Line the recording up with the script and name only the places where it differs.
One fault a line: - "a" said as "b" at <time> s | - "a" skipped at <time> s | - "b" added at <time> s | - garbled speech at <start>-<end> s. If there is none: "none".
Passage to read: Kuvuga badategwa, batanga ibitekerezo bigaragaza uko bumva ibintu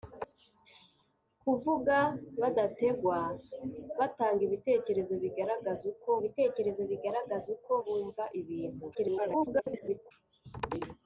- "ibitekerezo bigaragaza uko" added at 6.2 s
- garbled speech at 8.9-10.1 s